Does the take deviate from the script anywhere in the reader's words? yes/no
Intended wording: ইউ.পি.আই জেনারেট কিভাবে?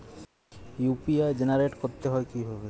yes